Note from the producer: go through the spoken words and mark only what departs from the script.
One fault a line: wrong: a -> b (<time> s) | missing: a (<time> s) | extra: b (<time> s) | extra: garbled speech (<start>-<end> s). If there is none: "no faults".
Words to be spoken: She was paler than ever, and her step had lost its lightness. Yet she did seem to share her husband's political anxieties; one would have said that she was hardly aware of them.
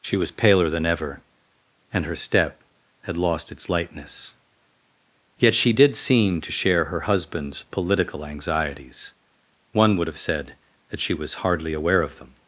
no faults